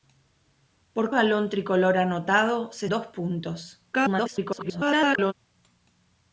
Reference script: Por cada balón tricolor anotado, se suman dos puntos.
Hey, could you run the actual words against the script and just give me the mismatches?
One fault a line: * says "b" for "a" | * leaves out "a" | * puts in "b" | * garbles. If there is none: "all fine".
* leaves out "cada"
* leaves out "suman"
* garbles